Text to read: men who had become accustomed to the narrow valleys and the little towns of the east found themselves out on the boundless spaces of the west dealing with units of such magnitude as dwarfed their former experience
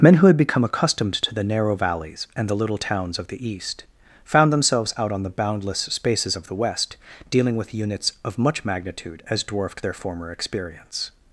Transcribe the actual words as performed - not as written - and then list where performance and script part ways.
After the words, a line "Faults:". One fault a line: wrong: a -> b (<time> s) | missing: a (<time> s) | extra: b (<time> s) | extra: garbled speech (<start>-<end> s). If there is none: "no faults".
men who had become accustomed to the narrow valleys and the little towns of the east found themselves out on the boundless spaces of the west dealing with units of much magnitude as dwarfed their former experience
Faults:
wrong: such -> much (8.4 s)